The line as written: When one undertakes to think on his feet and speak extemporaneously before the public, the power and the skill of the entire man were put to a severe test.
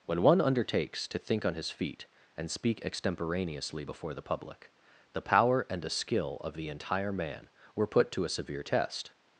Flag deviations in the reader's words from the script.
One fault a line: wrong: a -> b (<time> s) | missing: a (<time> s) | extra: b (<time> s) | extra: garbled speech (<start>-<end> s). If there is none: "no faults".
no faults